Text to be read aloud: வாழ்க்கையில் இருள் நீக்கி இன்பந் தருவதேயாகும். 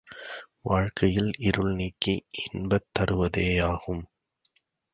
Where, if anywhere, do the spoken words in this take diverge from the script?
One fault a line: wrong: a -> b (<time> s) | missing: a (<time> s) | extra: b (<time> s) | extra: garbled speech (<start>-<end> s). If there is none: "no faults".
no faults